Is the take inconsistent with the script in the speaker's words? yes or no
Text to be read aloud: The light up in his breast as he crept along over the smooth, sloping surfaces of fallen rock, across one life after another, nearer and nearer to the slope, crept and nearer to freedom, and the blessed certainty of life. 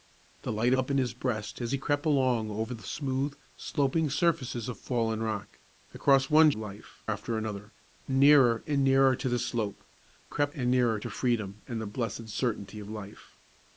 no